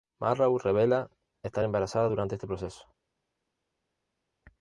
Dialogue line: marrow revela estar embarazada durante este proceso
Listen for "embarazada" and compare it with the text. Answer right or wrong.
right